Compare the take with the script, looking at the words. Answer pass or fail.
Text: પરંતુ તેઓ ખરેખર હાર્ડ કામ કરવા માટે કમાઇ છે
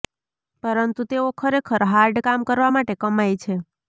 pass